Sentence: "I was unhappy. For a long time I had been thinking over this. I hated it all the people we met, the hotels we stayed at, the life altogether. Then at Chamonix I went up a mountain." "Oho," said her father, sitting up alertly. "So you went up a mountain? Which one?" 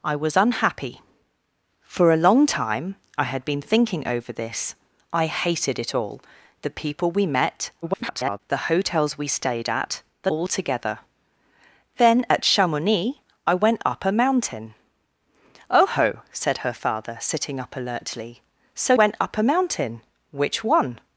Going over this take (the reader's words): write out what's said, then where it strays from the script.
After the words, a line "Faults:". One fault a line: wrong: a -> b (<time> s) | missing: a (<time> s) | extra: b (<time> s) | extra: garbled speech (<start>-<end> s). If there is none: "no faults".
"I was unhappy. For a long time I had been thinking over this. I hated it all the people we met, [garbled] the hotels we stayed at, the altogether. Then at Chamonix I went up a mountain." "Oho," said her father, sitting up alertly. "So went up a mountain? Which one?"
Faults:
extra: garbled speech (7.8-8.4 s)
missing: life (10.3 s)
missing: you (18.9 s)